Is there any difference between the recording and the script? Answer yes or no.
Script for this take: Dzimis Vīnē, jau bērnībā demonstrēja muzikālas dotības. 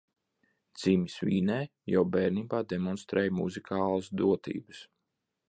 no